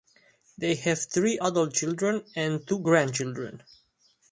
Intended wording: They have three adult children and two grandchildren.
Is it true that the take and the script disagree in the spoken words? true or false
false